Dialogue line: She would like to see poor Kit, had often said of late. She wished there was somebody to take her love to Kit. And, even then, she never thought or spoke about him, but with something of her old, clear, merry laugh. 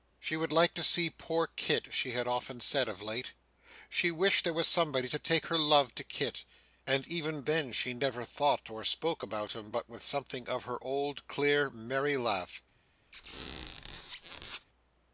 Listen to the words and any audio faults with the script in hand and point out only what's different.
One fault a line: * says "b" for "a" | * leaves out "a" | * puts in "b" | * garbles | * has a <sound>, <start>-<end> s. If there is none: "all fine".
* puts in "she"
* has a squeak, 13.1-14.7 s